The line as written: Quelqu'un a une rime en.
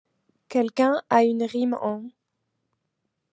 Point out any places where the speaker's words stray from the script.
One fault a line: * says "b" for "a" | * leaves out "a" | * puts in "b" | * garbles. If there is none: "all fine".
all fine